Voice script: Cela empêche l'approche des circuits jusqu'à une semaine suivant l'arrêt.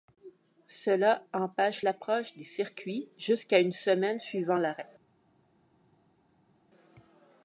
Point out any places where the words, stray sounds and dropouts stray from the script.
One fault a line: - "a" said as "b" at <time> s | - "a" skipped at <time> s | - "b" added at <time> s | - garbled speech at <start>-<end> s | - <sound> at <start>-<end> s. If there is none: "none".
none